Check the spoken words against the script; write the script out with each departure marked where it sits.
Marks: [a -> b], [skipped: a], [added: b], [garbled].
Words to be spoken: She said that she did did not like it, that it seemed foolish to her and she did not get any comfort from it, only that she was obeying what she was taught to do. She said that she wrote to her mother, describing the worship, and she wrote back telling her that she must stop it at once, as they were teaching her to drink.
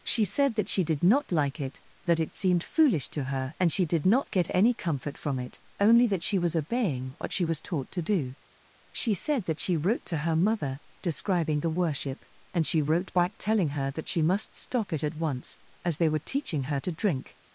She said that she did [skipped: did] not like it, that it seemed foolish to her and she did not get any comfort from it, only that she was obeying what she was taught to do. She said that she wrote to her mother, describing the worship, and she wrote back telling her that she must stop it at once, as they were teaching her to drink.